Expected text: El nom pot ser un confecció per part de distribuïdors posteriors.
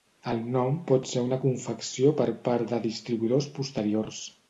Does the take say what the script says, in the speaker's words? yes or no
no